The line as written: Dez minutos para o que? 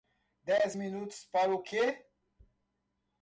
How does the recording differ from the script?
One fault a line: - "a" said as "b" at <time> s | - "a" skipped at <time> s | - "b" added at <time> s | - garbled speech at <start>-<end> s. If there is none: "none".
none